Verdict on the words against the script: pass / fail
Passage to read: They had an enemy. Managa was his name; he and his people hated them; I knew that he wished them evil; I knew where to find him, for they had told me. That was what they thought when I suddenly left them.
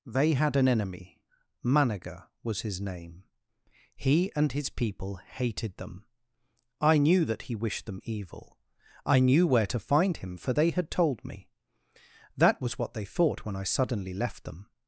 pass